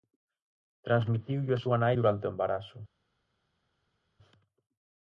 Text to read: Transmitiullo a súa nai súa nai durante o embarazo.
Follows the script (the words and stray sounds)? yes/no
no